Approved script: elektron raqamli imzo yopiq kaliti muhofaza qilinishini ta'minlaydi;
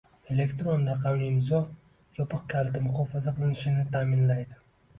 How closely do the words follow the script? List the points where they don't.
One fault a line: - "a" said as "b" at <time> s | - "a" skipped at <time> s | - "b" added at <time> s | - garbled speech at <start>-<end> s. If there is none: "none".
none